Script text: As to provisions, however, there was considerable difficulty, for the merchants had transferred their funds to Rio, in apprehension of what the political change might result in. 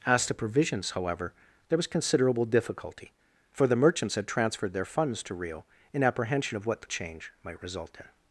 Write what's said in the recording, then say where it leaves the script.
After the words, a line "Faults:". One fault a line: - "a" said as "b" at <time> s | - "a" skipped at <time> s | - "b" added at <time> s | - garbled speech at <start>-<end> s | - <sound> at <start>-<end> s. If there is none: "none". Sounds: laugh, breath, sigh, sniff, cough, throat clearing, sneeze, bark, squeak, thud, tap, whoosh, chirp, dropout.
As to provisions, however, there was considerable difficulty, for the merchants had transferred their funds to Rio, in apprehension of what the change might result in.
Faults:
- "political" skipped at 6.9 s